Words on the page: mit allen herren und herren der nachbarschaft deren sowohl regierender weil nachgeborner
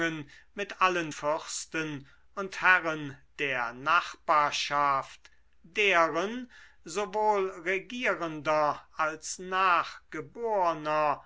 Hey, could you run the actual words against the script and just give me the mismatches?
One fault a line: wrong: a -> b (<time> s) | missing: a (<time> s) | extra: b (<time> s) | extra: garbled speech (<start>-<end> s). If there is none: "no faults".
wrong: herren -> fürsten (1.1 s)
wrong: weil -> als (9.0 s)